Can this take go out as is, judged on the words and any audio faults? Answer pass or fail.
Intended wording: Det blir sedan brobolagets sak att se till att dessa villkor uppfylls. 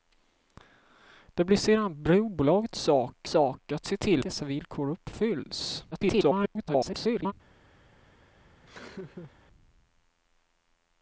fail